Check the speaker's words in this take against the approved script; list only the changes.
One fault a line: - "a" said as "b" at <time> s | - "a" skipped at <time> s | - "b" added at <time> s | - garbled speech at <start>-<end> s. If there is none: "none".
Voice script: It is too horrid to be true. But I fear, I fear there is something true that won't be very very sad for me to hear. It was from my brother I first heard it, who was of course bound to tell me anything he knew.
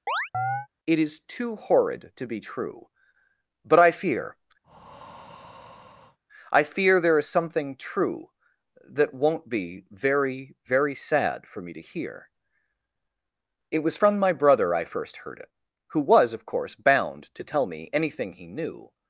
none